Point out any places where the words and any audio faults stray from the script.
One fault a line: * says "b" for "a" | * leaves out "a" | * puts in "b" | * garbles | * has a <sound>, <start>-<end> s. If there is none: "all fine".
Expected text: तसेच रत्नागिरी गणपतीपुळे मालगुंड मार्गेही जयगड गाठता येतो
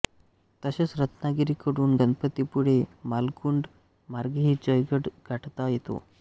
* puts in "कडून"